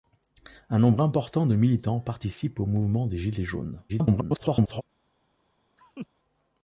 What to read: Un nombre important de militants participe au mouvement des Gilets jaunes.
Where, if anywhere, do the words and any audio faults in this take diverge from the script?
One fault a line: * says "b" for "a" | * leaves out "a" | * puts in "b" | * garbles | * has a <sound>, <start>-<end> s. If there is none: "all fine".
* garbles
* has a laugh, 5.8-6.1 s